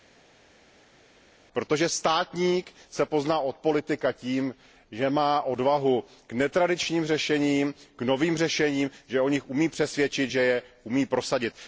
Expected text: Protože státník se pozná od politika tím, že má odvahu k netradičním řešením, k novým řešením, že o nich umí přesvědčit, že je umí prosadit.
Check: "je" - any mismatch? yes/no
no